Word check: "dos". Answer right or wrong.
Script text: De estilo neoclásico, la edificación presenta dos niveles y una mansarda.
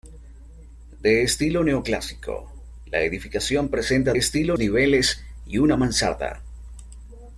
wrong